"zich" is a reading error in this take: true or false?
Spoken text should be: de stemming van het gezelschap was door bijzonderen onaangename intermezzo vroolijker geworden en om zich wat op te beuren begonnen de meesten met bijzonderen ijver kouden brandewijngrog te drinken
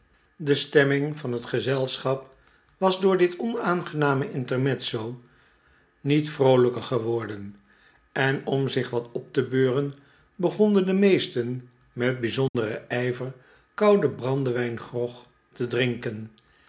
false